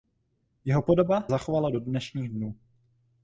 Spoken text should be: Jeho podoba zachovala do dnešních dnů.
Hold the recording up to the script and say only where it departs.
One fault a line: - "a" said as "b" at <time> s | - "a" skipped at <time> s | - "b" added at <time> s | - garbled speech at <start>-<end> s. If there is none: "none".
none